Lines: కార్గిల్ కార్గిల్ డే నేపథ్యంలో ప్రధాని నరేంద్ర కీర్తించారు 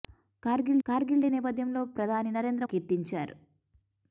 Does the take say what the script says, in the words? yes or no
yes